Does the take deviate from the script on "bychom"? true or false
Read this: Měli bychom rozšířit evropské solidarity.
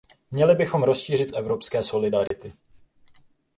false